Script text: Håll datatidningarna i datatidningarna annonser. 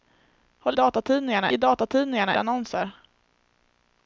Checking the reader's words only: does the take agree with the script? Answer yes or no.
yes